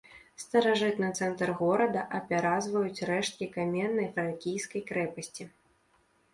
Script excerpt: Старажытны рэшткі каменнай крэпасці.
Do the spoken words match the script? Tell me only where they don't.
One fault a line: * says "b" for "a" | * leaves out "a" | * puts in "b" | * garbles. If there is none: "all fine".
* puts in "цэнтр горада апяразваюць"
* puts in "фракійскай"